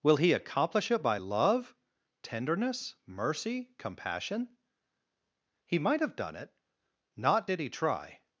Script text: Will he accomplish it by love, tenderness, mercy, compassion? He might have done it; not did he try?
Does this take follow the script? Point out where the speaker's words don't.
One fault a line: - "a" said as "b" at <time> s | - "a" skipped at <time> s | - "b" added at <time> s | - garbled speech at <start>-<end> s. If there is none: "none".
none